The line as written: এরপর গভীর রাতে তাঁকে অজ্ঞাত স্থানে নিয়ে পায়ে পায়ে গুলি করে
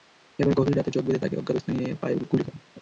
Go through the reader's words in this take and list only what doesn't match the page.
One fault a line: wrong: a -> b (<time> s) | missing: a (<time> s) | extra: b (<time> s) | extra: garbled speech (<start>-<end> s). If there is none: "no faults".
extra: চোখ বেঁধে (0.9 s)
missing: পায়ে (2.2 s)